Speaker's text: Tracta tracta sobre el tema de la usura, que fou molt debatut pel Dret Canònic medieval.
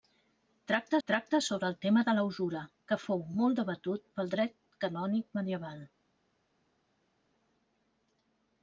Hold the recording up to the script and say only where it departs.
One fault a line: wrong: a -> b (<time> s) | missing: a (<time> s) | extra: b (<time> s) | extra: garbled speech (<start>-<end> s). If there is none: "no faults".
no faults